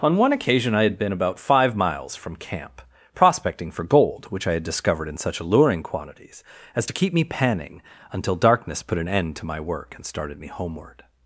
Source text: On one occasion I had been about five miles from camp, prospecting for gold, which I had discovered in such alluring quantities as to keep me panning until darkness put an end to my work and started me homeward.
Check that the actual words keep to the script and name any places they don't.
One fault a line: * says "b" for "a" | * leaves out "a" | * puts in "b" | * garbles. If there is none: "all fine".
all fine